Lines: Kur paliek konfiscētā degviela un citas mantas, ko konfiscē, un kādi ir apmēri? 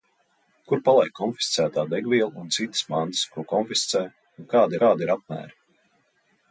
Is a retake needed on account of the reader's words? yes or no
yes